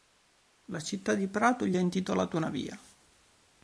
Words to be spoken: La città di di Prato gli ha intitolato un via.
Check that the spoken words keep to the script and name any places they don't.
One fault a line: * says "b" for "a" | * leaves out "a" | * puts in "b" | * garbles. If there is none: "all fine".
* leaves out "di"
* says "una" for "un"